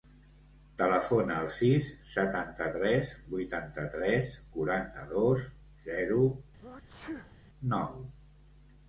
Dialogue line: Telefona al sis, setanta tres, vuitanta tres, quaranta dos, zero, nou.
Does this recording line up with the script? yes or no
yes